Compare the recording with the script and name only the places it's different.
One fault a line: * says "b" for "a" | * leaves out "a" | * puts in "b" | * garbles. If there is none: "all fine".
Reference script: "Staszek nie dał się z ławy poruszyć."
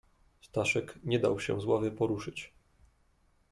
all fine